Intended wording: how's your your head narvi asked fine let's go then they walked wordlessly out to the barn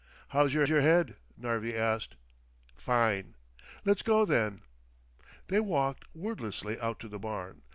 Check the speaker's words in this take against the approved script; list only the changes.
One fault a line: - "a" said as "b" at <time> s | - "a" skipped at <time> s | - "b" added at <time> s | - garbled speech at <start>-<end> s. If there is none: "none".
none